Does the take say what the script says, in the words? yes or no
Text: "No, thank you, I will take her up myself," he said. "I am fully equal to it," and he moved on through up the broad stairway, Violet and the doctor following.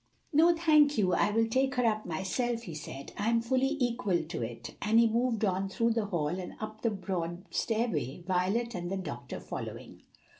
no